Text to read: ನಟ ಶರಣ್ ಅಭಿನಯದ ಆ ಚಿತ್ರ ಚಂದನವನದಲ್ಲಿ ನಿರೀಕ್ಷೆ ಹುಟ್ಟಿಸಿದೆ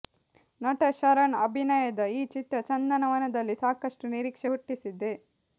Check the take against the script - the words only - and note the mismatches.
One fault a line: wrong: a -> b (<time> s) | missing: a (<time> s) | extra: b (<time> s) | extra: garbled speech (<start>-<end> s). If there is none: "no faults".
wrong: ಆ -> ಈ (2.1 s)
extra: ಸಾಕಷ್ಟು (3.6 s)